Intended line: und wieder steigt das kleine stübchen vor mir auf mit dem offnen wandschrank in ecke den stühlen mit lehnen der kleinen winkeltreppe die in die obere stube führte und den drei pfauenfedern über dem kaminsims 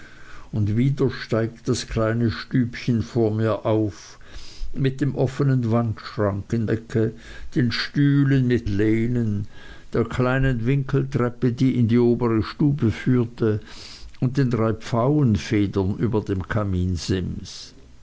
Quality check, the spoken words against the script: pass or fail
pass